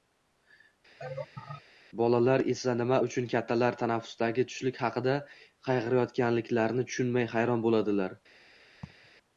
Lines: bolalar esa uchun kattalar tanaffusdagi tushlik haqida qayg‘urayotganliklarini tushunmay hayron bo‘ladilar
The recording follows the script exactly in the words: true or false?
false